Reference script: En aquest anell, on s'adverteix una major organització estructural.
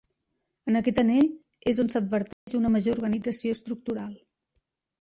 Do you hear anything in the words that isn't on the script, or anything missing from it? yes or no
yes